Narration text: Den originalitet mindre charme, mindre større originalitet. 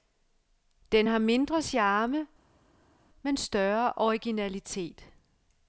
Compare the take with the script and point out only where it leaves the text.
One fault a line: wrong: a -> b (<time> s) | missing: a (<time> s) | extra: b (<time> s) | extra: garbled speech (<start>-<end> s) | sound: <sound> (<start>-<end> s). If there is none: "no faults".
wrong: originalitet -> har (1.1 s)
wrong: mindre -> men (3.2 s)